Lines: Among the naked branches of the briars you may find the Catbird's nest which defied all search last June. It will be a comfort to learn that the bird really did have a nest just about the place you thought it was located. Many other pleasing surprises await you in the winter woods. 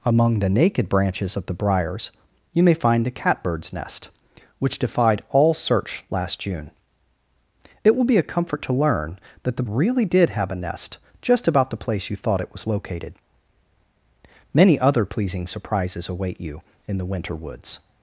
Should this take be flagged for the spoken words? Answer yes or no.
yes